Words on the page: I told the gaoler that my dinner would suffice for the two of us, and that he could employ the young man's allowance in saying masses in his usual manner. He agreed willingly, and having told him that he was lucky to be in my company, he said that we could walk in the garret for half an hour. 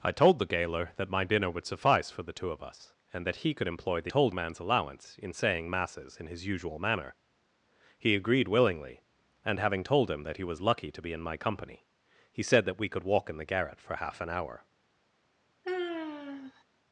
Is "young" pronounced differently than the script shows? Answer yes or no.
yes